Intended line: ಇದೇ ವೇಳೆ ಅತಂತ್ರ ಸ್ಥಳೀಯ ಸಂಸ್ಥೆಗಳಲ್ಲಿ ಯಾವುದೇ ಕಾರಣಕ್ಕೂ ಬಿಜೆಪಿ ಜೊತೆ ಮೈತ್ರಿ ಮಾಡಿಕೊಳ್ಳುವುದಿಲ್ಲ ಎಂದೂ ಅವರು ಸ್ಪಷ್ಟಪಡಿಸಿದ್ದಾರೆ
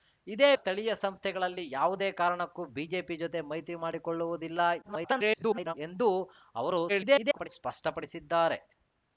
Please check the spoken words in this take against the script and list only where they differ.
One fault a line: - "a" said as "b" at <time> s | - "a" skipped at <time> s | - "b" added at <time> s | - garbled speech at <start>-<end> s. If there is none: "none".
- "ವೇಳೆ ಅತಂತ್ರ" skipped at 0.5 s
- garbled speech at 4.8-5.7 s
- garbled speech at 6.9-7.5 s